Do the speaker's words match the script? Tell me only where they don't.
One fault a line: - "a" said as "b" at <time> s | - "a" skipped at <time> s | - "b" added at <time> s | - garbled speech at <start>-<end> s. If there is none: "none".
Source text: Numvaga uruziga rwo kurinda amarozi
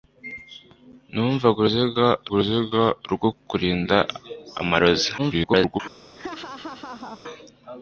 - "uruziga" added at 2.3 s
- garbled speech at 5.2-5.8 s